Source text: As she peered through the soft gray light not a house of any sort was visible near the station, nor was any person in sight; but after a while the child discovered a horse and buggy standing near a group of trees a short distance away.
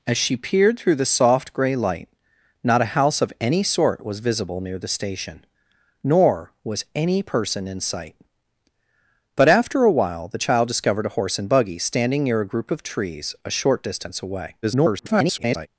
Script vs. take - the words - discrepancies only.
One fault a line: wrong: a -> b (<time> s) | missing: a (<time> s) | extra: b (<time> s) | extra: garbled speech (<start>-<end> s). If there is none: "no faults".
extra: garbled speech (14.6-15.7 s)